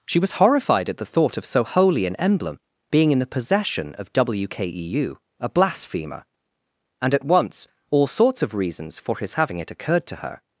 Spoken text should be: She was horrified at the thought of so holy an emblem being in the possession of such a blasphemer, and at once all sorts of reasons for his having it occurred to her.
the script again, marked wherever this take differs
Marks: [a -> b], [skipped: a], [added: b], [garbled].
She was horrified at the thought of so holy an emblem being in the possession of [such -> wkeu] a blasphemer, and at once all sorts of reasons for his having it occurred to her.